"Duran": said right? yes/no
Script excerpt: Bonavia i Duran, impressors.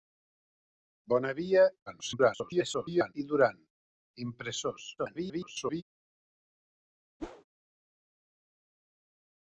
yes